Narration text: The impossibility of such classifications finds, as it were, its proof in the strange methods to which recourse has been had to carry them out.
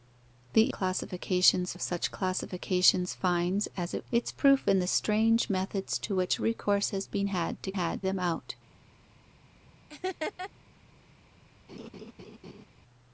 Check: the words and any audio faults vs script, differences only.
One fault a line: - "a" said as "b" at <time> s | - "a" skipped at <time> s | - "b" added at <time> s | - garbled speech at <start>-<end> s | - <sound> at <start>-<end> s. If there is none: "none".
- "impossibility" said as "classifications" at 0.7 s
- "were" skipped at 4.1 s
- "carry" said as "had" at 7.7 s
- laugh at 9.9-10.5 s
- laugh at 11.7-12.7 s